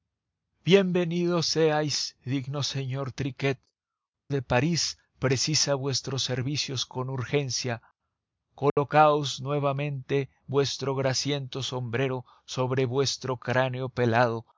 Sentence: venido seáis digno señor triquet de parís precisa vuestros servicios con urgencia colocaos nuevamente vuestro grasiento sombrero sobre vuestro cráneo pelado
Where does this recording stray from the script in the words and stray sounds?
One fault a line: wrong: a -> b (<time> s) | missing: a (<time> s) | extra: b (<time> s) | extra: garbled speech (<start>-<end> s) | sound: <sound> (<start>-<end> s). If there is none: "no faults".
sound: dropout (8.7-8.8 s)